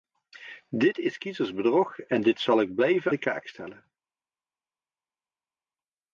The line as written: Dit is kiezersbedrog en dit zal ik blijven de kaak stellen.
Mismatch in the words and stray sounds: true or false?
false